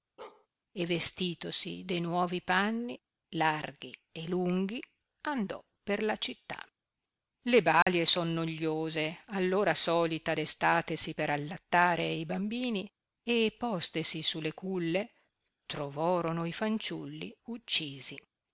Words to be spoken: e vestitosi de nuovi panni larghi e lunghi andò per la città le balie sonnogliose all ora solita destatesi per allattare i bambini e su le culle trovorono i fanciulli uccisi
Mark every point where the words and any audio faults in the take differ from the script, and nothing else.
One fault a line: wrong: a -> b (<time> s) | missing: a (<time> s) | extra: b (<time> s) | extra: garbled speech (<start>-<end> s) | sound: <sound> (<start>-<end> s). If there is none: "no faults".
sound: bark (0.2-0.5 s)
sound: dropout (7.8-7.9 s)
extra: postesi (13.6 s)